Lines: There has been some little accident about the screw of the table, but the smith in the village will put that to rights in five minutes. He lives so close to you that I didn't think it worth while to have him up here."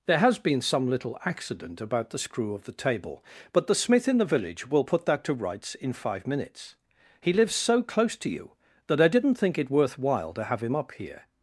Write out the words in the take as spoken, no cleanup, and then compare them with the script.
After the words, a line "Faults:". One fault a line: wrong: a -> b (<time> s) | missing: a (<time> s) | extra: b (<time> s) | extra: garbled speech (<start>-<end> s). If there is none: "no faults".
There has been some little accident about the screw of the table, but the smith in the village will put that to rights in five minutes. He lives so close to you that I didn't think it worth while to have him up here."
Faults:
no faults